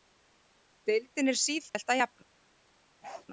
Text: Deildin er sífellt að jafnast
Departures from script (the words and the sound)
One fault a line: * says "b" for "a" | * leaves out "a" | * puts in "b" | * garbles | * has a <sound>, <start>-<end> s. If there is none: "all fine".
* has a dropout, 1.7-1.7 s
* has a bark, 3.0-3.3 s